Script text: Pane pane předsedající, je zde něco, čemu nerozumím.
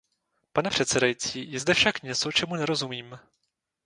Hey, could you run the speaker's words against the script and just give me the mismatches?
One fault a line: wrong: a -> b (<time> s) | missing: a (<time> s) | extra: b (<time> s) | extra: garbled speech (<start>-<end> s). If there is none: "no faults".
missing: pane (0.7 s)
extra: však (1.7 s)